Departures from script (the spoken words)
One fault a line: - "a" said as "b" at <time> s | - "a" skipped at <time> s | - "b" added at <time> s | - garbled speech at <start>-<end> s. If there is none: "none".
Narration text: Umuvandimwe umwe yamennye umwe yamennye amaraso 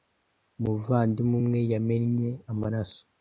- "umwe yamennye" skipped at 2.3 s